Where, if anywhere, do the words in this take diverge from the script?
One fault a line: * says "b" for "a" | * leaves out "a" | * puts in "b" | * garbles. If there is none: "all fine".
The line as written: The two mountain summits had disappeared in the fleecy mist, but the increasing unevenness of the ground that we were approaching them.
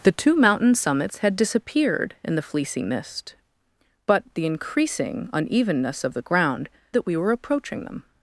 all fine